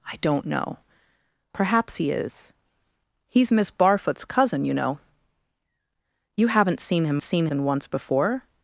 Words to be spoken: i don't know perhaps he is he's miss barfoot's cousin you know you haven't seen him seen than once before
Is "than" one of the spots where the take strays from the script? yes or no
no